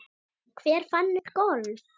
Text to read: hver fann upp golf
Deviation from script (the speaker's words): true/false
false